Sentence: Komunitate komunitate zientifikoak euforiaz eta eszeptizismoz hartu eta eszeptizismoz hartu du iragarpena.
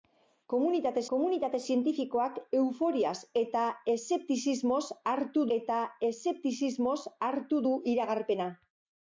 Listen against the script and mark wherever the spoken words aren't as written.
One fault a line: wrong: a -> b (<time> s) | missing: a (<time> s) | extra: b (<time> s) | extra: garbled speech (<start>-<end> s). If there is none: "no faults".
no faults